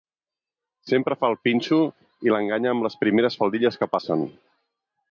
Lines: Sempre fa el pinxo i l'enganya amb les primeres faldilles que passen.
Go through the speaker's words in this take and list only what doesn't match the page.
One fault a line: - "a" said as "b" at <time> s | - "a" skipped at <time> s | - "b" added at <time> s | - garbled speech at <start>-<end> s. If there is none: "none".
none